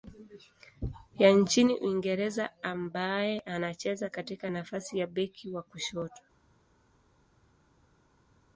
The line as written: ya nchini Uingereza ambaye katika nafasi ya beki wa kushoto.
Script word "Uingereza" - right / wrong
right